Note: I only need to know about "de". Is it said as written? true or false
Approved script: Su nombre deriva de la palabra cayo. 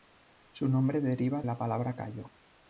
false